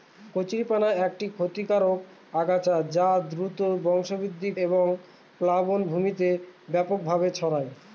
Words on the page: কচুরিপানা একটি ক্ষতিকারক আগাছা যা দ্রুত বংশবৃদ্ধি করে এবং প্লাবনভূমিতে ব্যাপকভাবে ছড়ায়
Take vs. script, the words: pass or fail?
fail